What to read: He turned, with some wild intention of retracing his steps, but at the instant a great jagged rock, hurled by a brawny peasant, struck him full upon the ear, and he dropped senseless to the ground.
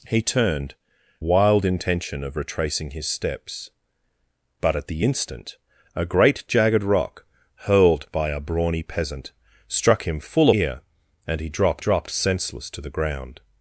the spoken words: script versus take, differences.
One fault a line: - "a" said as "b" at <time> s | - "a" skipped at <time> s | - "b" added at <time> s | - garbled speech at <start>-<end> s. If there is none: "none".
- "with some" skipped at 0.8 s
- "upon the" skipped at 10.5 s
- "dropped" added at 11.8 s